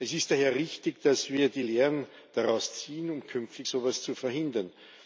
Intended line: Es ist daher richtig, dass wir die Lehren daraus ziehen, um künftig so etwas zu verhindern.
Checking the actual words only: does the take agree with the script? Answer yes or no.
yes